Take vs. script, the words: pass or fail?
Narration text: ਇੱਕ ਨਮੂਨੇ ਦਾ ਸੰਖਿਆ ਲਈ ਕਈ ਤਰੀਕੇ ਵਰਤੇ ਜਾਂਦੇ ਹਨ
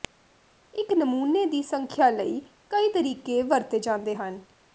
fail